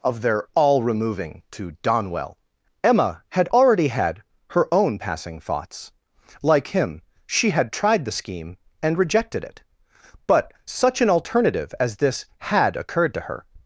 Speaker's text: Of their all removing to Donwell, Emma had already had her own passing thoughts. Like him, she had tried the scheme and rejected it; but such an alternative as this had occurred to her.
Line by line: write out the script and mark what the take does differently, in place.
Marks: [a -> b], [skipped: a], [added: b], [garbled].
Of their all removing to Donwell, Emma had already had her own passing thoughts. Like him, she had tried the scheme and rejected it; but such an alternative as this had occurred to her.